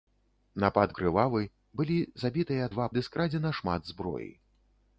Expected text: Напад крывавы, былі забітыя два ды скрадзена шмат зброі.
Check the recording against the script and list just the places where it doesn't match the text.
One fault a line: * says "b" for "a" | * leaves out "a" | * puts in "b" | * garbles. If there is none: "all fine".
all fine